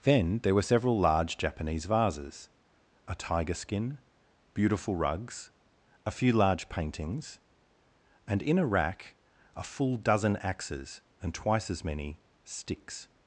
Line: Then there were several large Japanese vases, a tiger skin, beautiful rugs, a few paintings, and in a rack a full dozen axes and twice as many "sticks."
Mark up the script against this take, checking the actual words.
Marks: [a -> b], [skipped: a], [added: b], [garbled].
Then there were several large Japanese vases, a tiger skin, beautiful rugs, a few [added: large] paintings, and in a rack a full dozen axes and twice as many "sticks."